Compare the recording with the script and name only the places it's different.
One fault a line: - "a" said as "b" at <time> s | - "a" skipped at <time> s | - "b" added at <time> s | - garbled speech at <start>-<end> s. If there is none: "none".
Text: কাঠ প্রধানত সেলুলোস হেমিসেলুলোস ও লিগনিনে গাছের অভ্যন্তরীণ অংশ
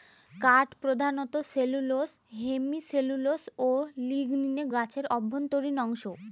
none